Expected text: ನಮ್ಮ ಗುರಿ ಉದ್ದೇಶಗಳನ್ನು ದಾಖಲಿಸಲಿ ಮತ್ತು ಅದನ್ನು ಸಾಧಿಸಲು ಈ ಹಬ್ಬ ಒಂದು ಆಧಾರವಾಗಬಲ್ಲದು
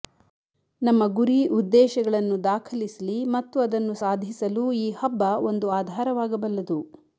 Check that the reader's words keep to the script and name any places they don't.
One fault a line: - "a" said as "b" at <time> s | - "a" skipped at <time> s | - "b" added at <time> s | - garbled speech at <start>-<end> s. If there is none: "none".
none